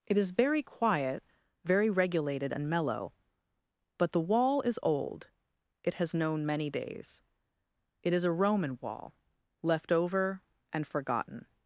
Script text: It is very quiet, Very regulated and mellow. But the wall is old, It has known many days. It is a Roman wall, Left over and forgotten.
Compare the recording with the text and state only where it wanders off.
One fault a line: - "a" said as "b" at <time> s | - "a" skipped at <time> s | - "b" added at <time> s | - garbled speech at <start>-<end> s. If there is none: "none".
none